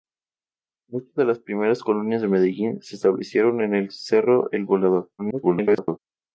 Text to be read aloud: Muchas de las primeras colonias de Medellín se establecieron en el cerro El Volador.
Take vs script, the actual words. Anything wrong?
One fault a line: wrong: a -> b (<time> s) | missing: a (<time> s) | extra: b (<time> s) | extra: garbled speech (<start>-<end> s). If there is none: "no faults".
extra: garbled speech (5.2-6.0 s)